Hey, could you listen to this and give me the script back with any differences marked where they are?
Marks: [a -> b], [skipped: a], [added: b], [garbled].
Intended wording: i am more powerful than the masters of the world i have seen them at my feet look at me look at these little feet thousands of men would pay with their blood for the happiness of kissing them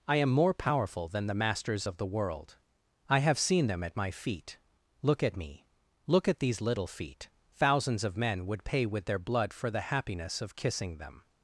i am more powerful than the masters of the world i have seen them at my feet look at me look at these little feet thousands of men would pay with their blood for the happiness of kissing them